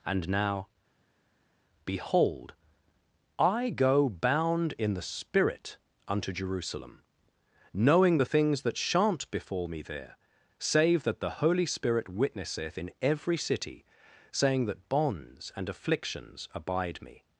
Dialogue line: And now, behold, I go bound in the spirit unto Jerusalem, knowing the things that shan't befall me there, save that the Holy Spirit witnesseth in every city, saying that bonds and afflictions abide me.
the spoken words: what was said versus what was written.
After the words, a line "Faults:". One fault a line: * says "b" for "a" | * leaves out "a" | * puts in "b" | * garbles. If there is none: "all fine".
And now, behold, I go bound in the spirit unto Jerusalem, knowing the things that shan't befall me there, save that the Holy Spirit witnesseth in every city, saying that bonds and afflictions abide me.
Faults:
all fine